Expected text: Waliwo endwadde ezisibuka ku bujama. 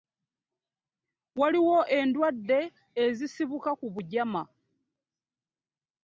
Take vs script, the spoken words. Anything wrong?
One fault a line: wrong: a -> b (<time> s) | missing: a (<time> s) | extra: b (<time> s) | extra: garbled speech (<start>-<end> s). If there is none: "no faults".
no faults